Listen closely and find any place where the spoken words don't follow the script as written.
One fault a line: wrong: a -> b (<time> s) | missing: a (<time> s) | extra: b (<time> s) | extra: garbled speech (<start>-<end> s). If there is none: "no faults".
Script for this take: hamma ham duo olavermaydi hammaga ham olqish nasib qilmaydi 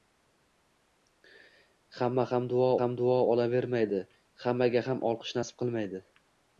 extra: ham duo (2.8 s)